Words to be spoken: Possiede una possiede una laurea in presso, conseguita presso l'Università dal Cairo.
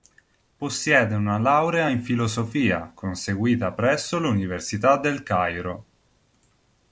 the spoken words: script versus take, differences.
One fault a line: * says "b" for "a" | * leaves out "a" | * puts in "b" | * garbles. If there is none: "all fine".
* leaves out "possiede una"
* says "filosofia" for "presso"
* says "del" for "dal"